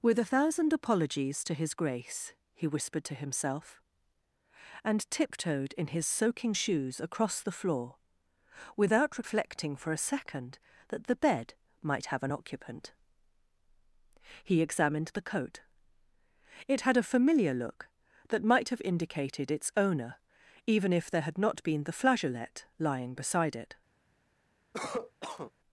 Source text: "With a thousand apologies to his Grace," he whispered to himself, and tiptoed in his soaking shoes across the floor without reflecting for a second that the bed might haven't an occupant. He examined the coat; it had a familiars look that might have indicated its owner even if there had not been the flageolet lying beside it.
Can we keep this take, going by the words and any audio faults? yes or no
no